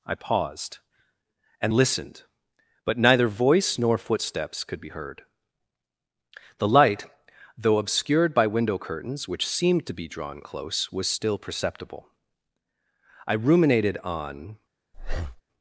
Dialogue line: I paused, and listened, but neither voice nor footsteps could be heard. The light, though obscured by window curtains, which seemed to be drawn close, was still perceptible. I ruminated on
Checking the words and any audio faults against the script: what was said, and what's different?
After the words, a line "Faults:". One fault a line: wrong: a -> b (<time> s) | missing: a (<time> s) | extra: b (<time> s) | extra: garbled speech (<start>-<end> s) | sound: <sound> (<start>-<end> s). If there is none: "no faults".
I paused, and listened, but neither voice nor footsteps could be heard. The light, though obscured by window curtains, which seemed to be drawn close, was still perceptible. I ruminated on
Faults:
sound: breath (14.9-15.4 s)